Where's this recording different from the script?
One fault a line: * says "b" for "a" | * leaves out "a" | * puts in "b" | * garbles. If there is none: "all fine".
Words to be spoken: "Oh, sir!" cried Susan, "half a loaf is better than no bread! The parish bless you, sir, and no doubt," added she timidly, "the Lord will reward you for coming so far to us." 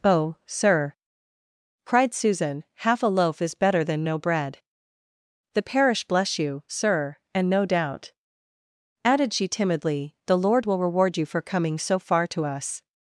all fine